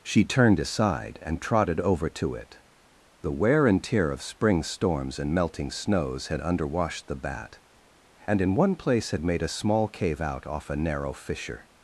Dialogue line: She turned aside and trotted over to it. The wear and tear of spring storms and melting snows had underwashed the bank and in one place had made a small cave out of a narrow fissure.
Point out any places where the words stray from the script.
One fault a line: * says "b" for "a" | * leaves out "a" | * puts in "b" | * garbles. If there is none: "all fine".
* says "bat" for "bank"
* says "off" for "of"